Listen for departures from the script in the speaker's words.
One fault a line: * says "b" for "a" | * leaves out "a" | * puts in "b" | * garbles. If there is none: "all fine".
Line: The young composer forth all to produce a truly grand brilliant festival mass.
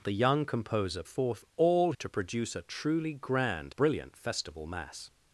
all fine